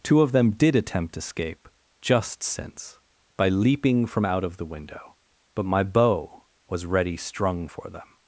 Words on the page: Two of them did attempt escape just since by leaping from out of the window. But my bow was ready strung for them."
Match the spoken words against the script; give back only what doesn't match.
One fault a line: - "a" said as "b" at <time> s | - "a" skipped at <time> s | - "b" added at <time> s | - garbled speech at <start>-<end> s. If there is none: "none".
none